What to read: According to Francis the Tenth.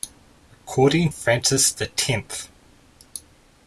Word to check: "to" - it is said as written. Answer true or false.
false